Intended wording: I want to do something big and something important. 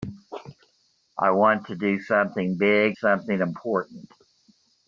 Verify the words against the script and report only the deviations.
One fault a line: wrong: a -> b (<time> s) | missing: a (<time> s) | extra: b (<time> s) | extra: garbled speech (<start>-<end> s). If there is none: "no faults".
missing: and (3.0 s)